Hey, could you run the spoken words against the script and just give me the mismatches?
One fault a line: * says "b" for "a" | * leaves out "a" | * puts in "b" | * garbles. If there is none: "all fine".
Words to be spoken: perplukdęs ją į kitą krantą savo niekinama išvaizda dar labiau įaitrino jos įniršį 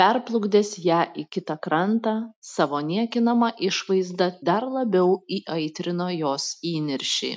all fine